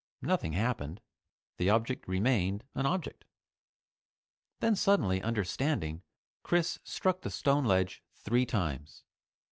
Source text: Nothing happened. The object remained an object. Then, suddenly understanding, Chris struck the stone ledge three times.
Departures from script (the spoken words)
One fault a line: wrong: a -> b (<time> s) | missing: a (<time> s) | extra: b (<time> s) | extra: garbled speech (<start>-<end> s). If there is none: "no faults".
no faults